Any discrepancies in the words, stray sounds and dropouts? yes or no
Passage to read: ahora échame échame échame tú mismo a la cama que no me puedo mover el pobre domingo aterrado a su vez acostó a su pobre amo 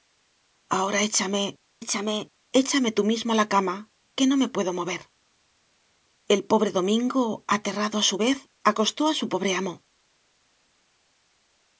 no